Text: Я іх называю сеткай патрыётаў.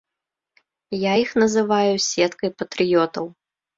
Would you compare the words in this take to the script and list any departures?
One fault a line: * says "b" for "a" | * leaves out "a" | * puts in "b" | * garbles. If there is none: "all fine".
all fine